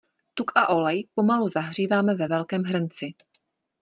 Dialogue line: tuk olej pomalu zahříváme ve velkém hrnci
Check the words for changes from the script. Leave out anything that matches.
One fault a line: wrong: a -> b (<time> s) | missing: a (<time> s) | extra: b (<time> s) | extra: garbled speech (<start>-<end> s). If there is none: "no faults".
extra: a (0.6 s)